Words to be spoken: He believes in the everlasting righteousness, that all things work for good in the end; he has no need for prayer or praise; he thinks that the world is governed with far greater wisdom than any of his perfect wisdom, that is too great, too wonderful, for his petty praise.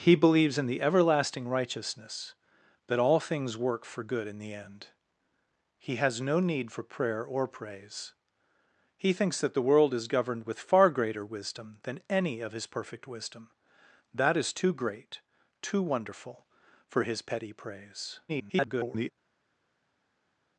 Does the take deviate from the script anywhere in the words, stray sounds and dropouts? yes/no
yes